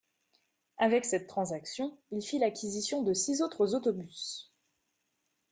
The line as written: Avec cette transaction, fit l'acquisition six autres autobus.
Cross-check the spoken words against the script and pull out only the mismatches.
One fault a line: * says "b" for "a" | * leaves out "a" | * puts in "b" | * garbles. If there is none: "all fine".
* puts in "il"
* puts in "de"